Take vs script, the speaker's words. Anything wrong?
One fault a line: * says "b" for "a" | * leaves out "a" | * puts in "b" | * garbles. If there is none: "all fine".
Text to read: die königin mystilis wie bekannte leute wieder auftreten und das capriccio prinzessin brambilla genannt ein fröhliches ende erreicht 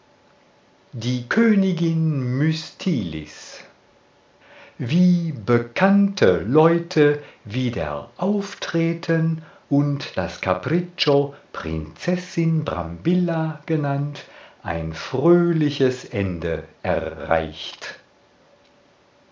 all fine